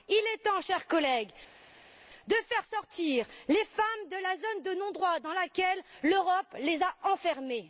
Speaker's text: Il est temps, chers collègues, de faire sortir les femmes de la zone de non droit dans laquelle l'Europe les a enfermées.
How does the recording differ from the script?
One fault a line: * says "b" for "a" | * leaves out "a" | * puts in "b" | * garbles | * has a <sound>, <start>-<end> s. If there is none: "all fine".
all fine